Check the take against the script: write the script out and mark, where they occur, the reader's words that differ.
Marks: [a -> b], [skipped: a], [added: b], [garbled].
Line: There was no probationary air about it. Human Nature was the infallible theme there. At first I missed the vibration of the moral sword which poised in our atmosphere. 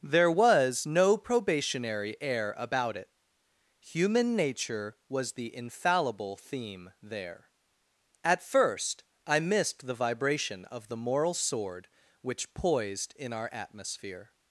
There was no probationary air about it. Human Nature was the infallible theme there. At first I missed the vibration of the moral sword which poised in our atmosphere.